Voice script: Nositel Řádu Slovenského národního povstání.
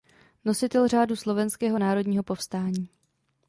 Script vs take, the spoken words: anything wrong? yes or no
no